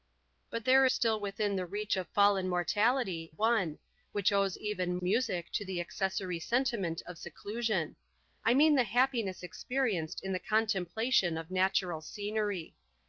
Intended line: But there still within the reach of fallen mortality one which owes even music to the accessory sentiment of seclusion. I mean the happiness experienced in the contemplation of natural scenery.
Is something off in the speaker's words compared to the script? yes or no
no